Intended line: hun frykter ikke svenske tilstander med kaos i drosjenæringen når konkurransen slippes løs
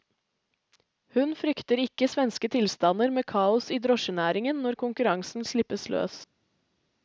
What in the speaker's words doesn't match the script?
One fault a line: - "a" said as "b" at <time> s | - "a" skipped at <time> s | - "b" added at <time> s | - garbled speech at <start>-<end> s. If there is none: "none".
none